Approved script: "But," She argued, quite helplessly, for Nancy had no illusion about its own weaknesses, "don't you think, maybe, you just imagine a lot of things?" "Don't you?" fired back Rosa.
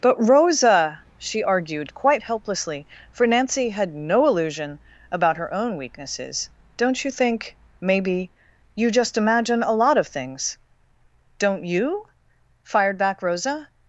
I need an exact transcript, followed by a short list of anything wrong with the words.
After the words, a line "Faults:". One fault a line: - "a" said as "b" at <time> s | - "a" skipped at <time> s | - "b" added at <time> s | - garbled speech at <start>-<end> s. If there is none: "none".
"But, Rosa," she argued, quite helplessly, for Nancy had no illusion about her own weaknesses, "don't you think, maybe, you just imagine a lot of things?" "Don't you?" fired back Rosa.
Faults:
- "Rosa" added at 0.2 s
- "its" said as "her" at 5.4 s